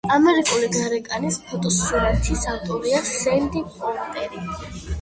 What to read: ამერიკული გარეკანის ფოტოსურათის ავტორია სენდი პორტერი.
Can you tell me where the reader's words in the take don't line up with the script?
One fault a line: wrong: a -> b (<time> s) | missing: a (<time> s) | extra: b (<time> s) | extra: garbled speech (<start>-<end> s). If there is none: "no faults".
no faults